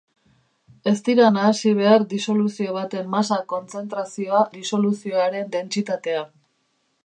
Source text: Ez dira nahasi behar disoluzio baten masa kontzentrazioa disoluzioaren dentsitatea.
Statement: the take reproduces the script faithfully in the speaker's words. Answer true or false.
true